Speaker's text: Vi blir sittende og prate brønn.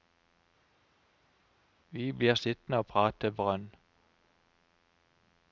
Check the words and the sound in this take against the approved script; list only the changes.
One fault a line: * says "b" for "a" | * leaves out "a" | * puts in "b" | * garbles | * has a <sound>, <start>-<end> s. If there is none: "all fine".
all fine